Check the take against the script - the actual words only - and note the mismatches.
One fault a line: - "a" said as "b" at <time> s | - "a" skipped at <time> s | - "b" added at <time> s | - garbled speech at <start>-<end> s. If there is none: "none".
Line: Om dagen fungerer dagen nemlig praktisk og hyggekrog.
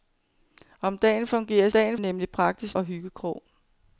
none